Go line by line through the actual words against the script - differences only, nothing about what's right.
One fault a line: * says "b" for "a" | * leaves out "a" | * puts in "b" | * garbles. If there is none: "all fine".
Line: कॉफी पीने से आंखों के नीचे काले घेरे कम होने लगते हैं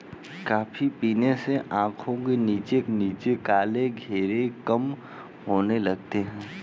* puts in "नीचे"